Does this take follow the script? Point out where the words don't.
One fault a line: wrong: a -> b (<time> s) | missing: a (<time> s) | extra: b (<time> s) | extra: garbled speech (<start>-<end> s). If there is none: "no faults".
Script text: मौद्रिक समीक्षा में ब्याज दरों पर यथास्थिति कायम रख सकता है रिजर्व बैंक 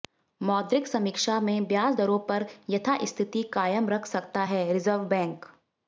no faults